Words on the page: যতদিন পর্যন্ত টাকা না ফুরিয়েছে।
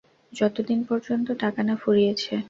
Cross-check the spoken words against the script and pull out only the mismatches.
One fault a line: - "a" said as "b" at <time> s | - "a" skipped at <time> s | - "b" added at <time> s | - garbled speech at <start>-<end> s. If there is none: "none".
none